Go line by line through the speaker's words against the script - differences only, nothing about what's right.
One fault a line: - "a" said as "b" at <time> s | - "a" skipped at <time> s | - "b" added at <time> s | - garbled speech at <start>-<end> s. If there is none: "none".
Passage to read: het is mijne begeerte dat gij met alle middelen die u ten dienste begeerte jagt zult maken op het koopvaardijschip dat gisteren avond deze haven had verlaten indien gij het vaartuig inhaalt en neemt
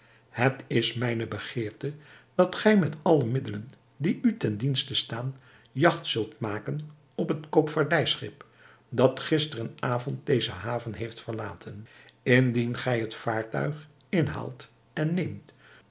- "begeerte" said as "staan" at 5.0 s
- "had" said as "heeft" at 10.9 s